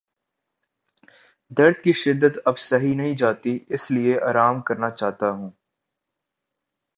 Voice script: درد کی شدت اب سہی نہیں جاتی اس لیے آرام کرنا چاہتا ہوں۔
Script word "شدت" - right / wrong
right